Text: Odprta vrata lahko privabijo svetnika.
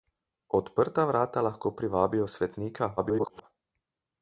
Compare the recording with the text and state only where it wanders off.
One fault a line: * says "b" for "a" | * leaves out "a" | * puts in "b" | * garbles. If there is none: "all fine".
* garbles